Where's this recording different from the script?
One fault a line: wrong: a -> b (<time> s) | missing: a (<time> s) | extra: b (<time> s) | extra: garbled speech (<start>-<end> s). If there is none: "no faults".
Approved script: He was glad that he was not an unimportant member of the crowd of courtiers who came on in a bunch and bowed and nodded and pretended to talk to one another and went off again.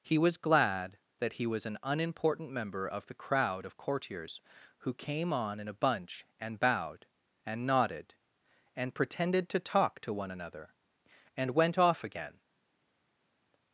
missing: not (1.7 s)